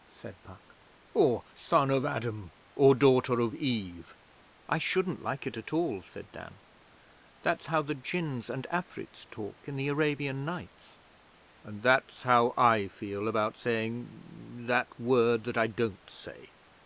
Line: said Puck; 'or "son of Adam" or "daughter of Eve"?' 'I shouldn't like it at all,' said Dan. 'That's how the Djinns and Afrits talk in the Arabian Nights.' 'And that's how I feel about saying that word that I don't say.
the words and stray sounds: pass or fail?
pass